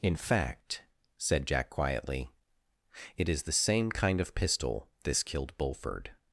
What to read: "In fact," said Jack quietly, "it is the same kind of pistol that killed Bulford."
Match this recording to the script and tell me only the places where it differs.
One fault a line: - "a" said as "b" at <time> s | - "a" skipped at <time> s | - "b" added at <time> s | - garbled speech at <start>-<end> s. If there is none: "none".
- "that" said as "this" at 5.0 s